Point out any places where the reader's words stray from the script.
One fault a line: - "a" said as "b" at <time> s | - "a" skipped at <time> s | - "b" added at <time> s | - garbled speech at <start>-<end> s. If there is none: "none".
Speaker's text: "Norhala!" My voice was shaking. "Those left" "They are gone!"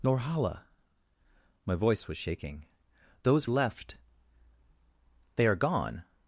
none